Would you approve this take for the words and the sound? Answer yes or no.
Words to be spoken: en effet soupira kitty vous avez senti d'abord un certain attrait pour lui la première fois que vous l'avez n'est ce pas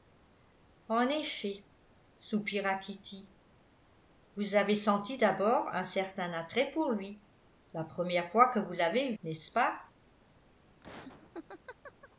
no